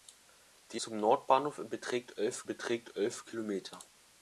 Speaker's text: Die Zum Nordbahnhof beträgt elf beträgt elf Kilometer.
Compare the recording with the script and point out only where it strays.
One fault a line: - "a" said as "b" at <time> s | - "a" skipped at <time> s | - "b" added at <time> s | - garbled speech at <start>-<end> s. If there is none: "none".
none